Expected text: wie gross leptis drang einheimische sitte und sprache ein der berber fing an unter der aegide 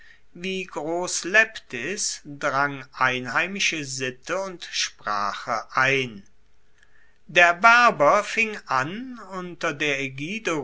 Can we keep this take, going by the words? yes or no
yes